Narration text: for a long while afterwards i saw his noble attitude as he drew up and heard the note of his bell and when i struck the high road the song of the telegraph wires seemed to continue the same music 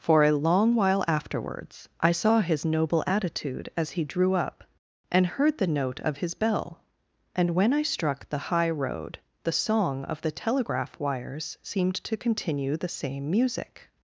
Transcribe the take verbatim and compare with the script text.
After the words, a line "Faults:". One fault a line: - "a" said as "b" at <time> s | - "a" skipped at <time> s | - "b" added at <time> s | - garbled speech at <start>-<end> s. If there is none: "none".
for a long while afterwards i saw his noble attitude as he drew up and heard the note of his bell and when i struck the high road the song of the telegraph wires seemed to continue the same music
Faults:
none